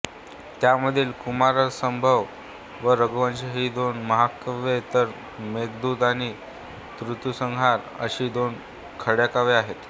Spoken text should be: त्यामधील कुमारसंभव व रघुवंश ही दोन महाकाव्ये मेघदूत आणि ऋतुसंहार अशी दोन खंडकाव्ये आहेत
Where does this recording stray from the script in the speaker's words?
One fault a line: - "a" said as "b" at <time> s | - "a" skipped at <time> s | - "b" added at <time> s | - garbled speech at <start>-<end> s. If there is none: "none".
- "तर" added at 4.9 s